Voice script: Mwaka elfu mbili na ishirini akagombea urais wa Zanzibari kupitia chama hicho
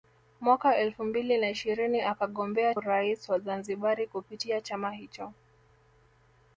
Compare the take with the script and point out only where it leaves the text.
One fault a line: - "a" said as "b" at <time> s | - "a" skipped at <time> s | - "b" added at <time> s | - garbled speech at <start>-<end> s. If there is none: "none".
none